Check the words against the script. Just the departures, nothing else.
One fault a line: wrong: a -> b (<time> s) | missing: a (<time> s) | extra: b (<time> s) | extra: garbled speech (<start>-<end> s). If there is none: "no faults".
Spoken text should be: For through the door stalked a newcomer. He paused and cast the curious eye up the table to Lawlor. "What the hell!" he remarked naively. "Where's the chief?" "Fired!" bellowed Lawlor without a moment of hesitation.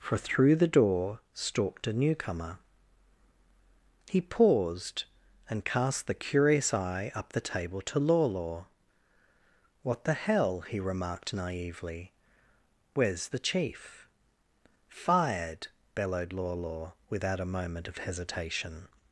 no faults